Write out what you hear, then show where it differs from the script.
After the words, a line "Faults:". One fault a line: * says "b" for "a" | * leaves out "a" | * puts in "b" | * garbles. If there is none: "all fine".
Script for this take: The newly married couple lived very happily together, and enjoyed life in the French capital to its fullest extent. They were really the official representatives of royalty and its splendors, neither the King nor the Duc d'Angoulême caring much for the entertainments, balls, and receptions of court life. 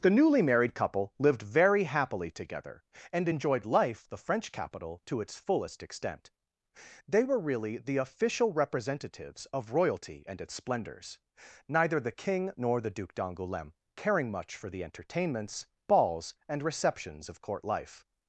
The newly married couple lived very happily together, and enjoyed life the French capital to its fullest extent. They were really the official representatives of royalty and its splendors, neither the King nor the Duc d'Angoulême caring much for the entertainments, balls, and receptions of court life.
Faults:
* leaves out "in"